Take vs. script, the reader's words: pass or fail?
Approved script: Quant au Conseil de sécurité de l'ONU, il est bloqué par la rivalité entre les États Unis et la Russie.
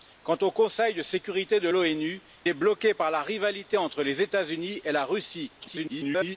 fail